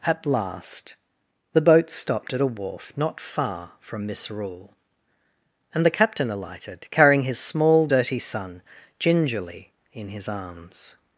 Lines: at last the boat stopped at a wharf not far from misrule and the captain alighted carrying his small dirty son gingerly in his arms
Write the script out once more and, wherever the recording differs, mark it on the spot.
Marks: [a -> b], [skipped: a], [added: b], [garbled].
at last the boat stopped at a wharf not far from misrule and the captain alighted carrying his small dirty son gingerly in his arms